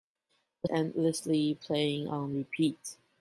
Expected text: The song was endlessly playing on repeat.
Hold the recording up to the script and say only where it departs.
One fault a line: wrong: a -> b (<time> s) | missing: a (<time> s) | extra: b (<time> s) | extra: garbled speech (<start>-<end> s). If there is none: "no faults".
missing: song was (0.7 s)